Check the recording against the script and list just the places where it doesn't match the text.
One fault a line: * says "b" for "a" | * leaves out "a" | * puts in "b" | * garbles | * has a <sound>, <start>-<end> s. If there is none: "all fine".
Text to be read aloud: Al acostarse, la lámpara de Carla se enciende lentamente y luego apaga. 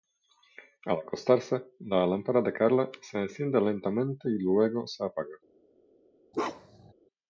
* puts in "se"
* has a bark, 6.3-6.9 s